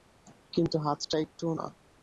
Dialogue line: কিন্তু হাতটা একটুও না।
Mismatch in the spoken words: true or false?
false